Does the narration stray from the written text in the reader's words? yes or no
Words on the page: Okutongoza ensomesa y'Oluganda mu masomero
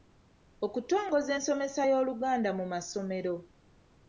no